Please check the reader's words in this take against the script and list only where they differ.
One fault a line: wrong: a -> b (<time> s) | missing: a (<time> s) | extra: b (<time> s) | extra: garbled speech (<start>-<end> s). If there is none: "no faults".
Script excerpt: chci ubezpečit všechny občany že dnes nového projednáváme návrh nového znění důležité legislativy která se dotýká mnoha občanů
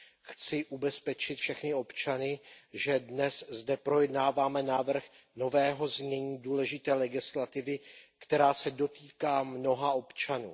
wrong: nového -> zde (3.5 s)